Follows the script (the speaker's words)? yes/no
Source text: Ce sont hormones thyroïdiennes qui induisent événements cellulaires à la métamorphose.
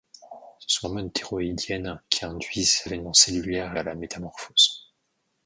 yes